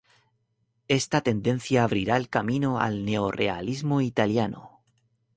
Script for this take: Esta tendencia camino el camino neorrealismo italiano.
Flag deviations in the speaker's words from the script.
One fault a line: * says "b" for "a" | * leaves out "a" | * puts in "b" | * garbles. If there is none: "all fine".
* says "abrirá" for "camino"
* puts in "al"